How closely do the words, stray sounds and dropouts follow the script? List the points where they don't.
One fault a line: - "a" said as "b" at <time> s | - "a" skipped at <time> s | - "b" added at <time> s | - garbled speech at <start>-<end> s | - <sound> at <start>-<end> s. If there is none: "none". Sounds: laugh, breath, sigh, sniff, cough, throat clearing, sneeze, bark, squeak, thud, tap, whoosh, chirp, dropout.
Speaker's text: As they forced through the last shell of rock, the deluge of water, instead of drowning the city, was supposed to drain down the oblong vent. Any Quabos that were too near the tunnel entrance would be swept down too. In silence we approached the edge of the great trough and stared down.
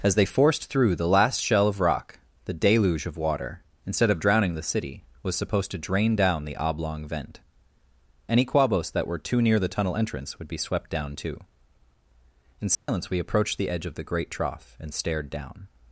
- dropout at 12.7-12.9 s